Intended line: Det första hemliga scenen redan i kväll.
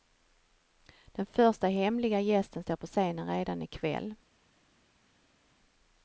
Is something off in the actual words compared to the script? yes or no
yes